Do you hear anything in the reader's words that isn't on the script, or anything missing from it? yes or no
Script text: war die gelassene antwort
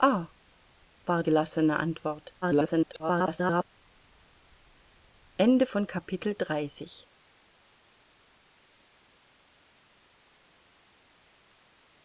yes